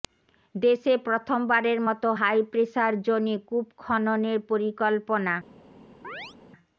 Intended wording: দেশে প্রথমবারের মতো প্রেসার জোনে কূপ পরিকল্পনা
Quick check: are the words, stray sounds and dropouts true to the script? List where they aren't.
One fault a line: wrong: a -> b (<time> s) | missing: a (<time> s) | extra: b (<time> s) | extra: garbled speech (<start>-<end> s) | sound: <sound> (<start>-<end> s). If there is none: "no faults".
extra: হাই (2.2 s)
extra: খননের (3.8 s)
sound: chirp (6.0-6.4 s)